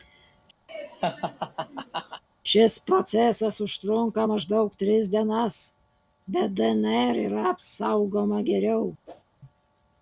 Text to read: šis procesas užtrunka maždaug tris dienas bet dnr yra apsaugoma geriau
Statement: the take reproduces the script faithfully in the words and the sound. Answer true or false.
false